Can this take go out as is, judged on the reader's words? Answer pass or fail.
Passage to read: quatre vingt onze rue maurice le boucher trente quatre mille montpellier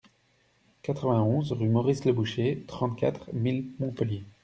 pass